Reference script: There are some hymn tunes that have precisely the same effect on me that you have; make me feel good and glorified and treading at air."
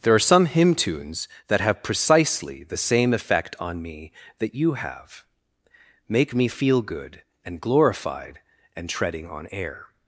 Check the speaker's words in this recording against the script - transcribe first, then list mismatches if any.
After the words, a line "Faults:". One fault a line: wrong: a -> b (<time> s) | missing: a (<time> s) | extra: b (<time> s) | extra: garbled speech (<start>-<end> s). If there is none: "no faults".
There are some hymn tunes that have precisely the same effect on me that you have; make me feel good and glorified and treading on air."
Faults:
wrong: at -> on (9.3 s)